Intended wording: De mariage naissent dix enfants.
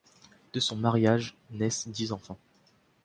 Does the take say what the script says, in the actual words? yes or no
no